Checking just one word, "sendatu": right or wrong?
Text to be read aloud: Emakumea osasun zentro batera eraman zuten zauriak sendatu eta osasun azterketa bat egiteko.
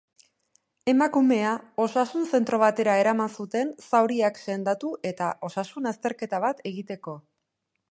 right